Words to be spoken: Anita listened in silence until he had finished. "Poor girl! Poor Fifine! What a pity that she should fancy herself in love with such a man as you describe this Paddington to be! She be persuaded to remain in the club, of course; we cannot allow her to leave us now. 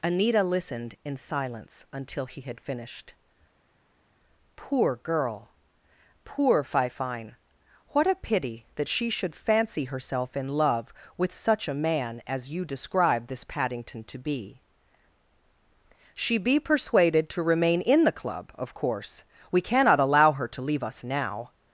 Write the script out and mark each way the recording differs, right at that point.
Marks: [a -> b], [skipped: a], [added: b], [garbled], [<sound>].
Anita listened in silence until he had finished. "Poor girl! Poor Fifine! What a pity that she should fancy herself in love with such a man as you describe this Paddington to be! She be persuaded to remain in the club, of course; we cannot allow her to leave us now.